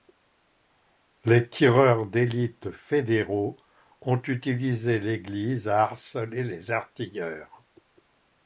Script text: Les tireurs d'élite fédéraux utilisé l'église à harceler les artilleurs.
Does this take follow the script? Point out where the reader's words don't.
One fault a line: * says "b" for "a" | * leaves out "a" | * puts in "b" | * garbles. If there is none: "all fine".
* puts in "ont"